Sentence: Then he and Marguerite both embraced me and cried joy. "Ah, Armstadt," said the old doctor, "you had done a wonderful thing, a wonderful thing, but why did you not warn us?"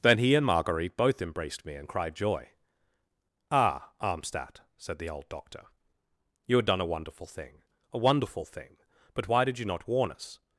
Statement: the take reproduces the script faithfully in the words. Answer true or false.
true